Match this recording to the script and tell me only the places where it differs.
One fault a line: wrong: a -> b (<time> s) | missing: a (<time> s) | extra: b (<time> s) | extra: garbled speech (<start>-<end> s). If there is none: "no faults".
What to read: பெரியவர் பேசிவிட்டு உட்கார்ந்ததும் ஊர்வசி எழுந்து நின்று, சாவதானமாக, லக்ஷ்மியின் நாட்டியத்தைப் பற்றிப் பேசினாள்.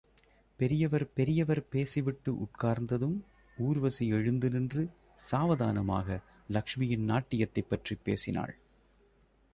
extra: பெரியவர் (1.1 s)